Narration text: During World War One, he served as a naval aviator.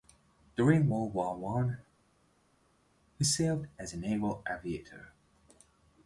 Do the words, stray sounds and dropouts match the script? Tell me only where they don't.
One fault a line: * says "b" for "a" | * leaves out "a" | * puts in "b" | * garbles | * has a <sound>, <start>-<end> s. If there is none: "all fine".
all fine